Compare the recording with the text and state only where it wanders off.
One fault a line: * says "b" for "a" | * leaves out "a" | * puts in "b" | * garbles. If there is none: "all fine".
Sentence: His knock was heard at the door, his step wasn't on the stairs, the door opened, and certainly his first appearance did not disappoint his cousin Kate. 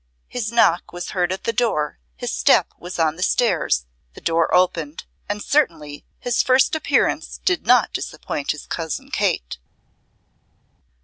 * says "was" for "wasn't"